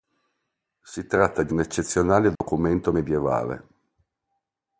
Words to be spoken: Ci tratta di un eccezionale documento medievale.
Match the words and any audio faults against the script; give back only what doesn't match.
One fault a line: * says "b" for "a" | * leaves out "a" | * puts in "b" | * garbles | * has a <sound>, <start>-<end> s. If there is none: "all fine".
* says "Si" for "Ci"
* has a dropout, 2.4-2.4 s